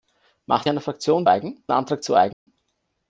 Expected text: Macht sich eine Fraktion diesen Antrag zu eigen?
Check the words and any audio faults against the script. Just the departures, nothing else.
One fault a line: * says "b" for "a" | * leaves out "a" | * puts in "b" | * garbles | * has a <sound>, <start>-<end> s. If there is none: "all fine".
* leaves out "sich"
* says "eigen" for "diesen"
* has a dropout, 2.3-2.5 s